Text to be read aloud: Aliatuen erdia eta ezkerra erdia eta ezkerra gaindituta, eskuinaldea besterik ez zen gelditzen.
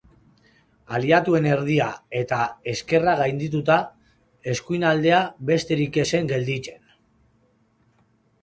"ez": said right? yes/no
yes